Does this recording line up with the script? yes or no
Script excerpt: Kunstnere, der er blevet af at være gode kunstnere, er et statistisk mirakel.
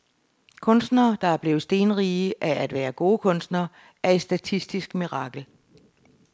no